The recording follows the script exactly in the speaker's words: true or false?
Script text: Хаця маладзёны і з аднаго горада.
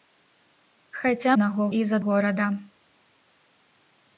false